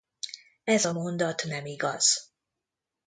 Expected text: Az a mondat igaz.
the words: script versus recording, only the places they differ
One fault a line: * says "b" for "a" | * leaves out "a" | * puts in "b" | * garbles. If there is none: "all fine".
* says "Ez" for "Az"
* puts in "nem"